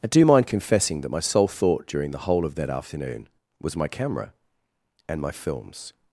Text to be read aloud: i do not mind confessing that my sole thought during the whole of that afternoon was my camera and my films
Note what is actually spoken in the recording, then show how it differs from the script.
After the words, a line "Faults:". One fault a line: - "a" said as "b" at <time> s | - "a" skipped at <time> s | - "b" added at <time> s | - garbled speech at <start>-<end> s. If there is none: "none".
i do mind confessing that my sole thought during the whole of that afternoon was my camera and my films
Faults:
- "not" skipped at 0.2 s